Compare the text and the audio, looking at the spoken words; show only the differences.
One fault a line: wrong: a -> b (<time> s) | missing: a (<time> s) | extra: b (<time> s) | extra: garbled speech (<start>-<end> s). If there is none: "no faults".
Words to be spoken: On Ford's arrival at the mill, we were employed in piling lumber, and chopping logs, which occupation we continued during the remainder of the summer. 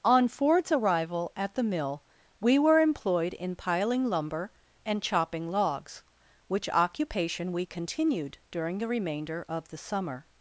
no faults